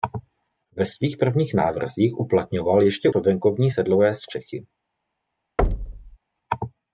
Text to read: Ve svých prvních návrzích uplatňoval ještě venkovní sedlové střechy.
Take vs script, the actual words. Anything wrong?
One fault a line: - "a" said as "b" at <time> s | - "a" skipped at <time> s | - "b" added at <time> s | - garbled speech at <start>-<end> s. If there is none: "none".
none